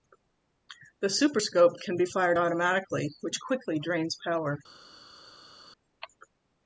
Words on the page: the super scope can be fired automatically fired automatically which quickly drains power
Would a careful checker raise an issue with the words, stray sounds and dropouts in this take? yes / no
yes